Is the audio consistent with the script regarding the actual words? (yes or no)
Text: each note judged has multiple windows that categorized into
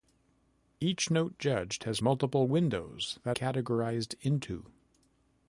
yes